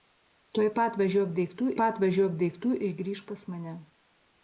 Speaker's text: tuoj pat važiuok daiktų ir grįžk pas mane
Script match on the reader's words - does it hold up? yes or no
no